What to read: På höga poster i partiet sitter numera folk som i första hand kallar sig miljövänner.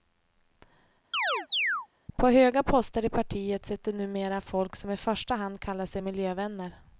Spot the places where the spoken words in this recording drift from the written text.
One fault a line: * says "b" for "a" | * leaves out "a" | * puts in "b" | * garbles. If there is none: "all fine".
all fine